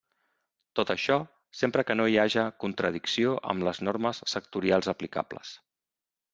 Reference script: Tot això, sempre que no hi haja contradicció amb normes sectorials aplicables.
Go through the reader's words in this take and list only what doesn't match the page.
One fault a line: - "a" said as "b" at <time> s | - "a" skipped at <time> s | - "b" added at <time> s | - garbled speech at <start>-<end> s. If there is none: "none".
- "les" added at 3.7 s